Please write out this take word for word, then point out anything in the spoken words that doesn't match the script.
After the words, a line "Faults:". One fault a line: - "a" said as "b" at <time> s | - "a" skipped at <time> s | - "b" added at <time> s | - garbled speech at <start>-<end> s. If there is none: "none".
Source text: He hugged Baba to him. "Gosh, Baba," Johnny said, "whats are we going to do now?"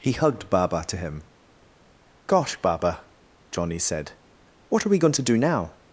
He hugged Baba to him. "Gosh, Baba," Johnny said, "what are we going to do now?"
Faults:
- "whats" said as "what" at 4.7 s